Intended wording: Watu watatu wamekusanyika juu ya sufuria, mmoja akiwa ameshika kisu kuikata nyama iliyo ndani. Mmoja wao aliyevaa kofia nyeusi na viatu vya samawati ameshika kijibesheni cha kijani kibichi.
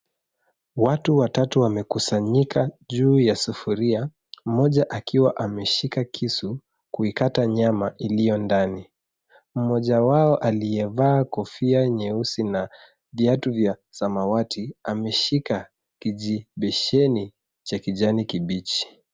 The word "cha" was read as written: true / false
true